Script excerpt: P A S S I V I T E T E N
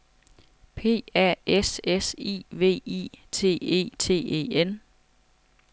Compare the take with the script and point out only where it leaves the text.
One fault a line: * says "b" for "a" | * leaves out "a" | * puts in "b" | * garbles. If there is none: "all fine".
all fine